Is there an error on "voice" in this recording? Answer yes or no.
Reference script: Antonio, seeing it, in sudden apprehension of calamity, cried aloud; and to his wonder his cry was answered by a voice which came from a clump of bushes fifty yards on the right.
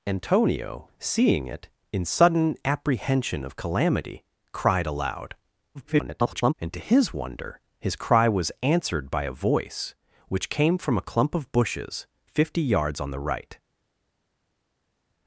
no